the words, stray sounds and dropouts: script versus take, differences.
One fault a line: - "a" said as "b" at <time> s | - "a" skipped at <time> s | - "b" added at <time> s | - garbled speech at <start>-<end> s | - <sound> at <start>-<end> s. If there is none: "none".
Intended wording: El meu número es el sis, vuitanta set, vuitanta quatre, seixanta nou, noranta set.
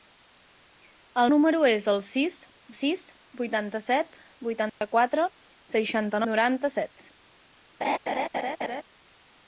- "meu" skipped at 1.3 s
- "sis" added at 2.7 s
- dropout at 4.7-4.8 s
- "nou" skipped at 6.3 s
- laugh at 7.8-8.8 s